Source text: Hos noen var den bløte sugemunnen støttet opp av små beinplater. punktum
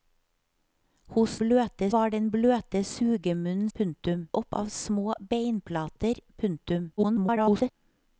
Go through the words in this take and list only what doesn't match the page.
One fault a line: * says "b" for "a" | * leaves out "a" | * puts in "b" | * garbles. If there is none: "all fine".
* says "bløte" for "noen"
* says "punktum" for "støttet"
* garbles